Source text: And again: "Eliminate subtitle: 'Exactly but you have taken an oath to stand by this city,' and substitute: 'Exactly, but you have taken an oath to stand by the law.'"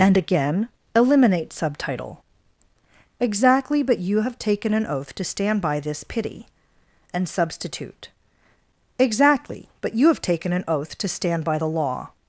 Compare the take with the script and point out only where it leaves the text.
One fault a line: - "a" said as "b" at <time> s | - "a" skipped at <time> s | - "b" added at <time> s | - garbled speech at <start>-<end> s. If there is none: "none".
- "city" said as "pity" at 6.0 s